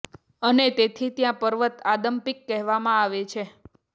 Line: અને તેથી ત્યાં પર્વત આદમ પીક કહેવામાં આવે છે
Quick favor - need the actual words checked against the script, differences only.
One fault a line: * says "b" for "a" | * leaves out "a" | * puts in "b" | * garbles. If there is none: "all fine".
all fine